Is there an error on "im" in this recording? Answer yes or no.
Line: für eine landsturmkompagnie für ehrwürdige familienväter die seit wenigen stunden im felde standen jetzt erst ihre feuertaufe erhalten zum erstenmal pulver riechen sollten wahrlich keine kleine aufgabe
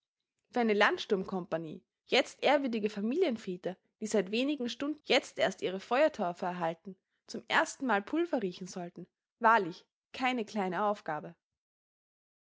yes